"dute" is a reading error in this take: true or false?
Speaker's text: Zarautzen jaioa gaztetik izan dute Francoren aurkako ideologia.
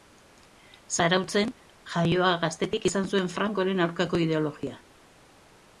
true